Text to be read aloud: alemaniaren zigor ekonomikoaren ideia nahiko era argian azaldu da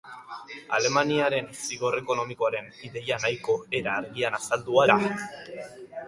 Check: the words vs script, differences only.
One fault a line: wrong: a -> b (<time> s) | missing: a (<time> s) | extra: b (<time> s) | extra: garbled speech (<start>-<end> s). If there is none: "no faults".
no faults